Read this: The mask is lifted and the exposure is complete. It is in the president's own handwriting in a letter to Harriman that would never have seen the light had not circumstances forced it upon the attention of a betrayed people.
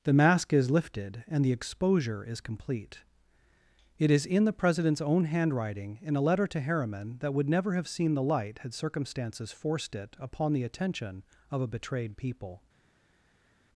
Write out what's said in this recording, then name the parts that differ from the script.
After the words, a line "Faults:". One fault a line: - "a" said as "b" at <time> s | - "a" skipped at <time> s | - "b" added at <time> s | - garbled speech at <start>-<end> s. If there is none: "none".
The mask is lifted and the exposure is complete. It is in the president's own handwriting in a letter to Harriman that would never have seen the light had circumstances forced it upon the attention of a betrayed people.
Faults:
- "not" skipped at 8.7 s